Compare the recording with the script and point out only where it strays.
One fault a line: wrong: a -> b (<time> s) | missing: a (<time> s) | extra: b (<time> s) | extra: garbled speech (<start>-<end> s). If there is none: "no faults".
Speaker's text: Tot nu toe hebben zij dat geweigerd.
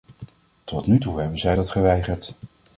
no faults